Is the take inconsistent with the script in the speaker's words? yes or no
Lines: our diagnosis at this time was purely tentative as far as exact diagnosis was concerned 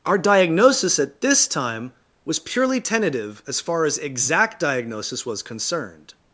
no